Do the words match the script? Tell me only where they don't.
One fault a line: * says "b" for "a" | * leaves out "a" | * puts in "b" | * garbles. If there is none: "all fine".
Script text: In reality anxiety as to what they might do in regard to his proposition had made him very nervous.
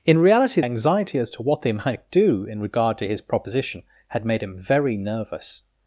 all fine